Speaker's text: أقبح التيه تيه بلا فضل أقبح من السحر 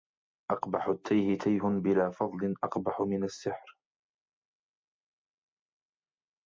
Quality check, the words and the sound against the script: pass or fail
pass